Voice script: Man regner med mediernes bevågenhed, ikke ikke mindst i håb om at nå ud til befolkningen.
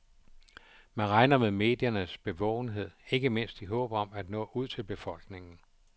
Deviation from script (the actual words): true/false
true